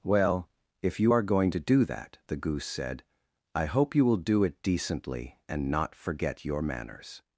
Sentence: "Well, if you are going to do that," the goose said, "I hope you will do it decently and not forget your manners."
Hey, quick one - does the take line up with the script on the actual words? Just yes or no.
yes